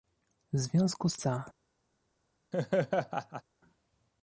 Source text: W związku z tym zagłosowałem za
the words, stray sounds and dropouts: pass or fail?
fail